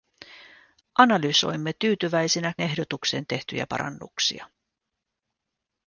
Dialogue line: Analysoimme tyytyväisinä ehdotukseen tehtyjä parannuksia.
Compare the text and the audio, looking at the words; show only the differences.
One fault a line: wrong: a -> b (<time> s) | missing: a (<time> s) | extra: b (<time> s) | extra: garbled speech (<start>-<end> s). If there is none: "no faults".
no faults